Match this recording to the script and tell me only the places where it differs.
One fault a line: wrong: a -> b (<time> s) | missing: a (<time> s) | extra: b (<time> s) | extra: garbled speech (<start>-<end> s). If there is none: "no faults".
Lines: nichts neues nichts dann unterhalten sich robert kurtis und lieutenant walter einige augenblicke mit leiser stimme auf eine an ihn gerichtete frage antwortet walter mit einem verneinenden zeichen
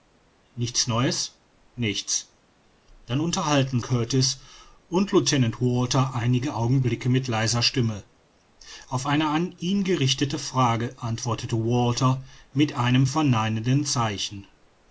missing: sich robert (3.8 s)